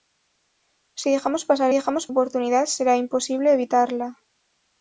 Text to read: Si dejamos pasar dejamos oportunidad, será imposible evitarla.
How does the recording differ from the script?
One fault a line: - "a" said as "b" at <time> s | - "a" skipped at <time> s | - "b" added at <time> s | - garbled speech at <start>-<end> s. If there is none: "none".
none